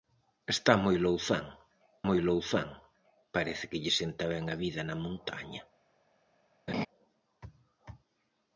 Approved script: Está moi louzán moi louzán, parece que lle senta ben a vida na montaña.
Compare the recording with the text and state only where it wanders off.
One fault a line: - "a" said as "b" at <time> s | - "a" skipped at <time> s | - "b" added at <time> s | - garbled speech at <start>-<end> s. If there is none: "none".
none